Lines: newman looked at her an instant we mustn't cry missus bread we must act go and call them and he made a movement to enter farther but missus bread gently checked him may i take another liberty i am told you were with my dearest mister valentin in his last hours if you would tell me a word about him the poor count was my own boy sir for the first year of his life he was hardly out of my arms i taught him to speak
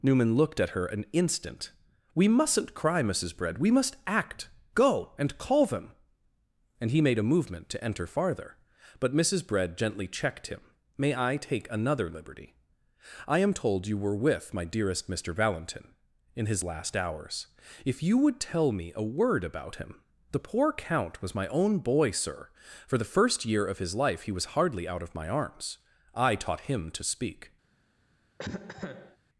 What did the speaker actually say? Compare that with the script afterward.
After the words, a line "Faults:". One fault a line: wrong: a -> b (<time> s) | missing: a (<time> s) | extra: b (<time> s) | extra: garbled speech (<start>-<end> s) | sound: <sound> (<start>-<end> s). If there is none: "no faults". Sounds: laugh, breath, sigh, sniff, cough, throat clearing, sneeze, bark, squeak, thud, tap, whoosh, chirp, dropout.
newman looked at her an instant we mustn't cry missus bread we must act go and call them and he made a movement to enter farther but missus bread gently checked him may i take another liberty i am told you were with my dearest mister valentin in his last hours if you would tell me a word about him the poor count was my own boy sir for the first year of his life he was hardly out of my arms i taught him to speak
Faults:
sound: cough (28.4-29.2 s)